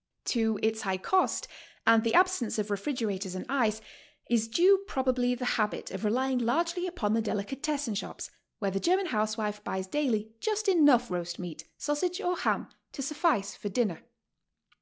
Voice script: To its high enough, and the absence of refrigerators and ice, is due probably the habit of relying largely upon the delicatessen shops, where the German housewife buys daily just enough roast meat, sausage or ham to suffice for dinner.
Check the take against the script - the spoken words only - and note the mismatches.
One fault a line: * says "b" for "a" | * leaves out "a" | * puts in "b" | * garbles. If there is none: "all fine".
* says "cost" for "enough"